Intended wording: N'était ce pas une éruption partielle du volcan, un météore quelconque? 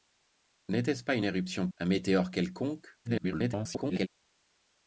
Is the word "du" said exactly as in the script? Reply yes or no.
no